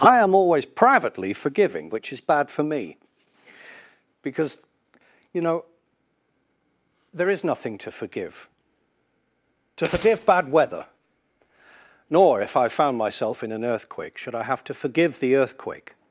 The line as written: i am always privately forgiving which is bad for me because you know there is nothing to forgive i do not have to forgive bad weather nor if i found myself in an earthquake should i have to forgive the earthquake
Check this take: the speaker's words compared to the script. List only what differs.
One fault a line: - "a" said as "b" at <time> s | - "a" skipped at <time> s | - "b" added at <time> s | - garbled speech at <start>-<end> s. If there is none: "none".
- "i do not have" skipped at 8.5 s